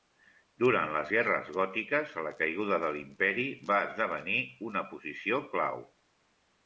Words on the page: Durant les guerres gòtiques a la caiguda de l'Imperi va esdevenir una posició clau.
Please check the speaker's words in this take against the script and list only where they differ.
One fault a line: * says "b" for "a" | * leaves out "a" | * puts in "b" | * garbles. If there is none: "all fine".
all fine